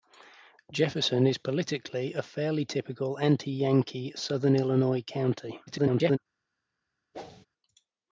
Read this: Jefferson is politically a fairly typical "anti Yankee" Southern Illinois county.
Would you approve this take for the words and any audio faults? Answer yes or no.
no